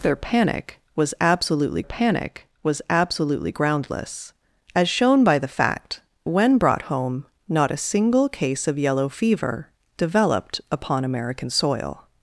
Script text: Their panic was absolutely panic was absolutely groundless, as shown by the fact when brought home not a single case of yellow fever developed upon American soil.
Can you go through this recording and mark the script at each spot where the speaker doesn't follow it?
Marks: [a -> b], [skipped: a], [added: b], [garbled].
Their panic was absolutely panic was absolutely groundless, as shown by the fact when brought home not a single case of yellow fever developed upon American soil.